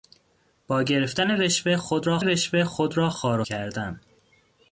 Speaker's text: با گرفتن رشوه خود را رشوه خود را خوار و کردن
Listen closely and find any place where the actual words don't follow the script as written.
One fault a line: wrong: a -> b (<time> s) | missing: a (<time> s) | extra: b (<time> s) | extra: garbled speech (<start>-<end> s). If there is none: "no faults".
no faults